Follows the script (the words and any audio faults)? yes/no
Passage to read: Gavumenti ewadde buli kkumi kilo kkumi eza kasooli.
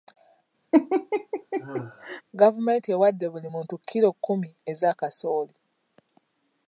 no